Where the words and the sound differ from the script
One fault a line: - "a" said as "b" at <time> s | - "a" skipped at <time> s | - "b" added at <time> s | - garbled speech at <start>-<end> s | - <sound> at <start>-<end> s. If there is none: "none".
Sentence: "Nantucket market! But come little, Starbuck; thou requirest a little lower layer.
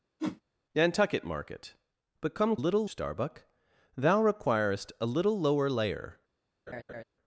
- whoosh at 0.2-0.4 s
- laugh at 6.7-7.0 s